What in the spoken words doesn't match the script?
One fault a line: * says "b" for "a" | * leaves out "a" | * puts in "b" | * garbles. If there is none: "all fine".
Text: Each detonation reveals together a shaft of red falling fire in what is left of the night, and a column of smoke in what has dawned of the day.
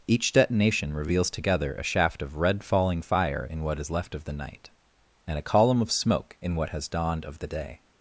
all fine